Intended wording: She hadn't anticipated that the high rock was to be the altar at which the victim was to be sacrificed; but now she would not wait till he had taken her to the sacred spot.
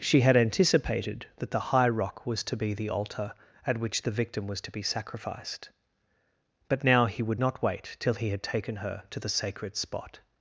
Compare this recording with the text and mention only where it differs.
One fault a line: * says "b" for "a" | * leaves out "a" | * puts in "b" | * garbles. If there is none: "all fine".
* says "had" for "hadn't"
* says "he" for "she"